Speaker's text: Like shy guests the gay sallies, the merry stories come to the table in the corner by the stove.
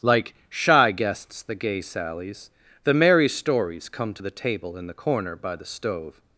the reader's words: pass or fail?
pass